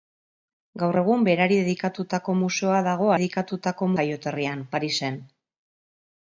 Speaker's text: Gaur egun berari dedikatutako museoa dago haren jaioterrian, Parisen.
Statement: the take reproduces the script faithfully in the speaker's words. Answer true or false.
false